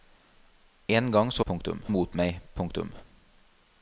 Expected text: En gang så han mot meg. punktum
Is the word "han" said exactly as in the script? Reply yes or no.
no